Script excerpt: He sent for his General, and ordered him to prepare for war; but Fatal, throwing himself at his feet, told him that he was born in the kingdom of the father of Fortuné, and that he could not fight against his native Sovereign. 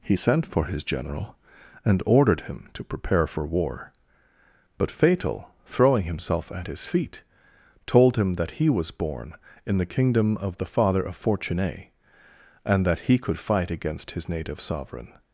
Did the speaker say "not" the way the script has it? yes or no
no